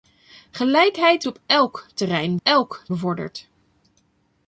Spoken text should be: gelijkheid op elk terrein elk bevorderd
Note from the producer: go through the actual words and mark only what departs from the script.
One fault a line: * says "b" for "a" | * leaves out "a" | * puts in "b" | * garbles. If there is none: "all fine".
all fine